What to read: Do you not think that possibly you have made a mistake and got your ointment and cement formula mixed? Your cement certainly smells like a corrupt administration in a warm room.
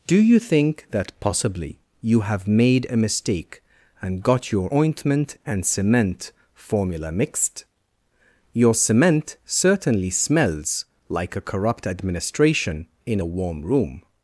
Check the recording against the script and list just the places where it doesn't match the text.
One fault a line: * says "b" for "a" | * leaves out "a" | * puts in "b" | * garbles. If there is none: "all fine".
* leaves out "not"